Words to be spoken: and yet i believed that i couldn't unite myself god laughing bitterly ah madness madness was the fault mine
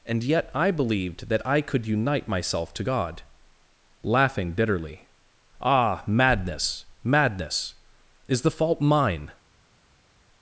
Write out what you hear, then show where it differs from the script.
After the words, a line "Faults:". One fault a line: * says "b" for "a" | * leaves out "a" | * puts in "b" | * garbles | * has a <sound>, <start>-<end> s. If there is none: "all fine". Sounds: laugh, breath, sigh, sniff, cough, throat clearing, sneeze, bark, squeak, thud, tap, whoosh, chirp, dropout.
and yet i believed that i could unite myself to god laughing bitterly ah madness madness is the fault mine
Faults:
* says "could" for "couldn't"
* puts in "to"
* says "is" for "was"